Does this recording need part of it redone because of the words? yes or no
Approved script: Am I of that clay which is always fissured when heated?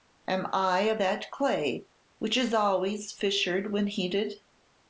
no